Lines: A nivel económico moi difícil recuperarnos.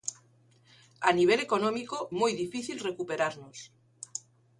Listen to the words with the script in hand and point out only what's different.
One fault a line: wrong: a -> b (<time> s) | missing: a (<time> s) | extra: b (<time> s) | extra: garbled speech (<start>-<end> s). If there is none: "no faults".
no faults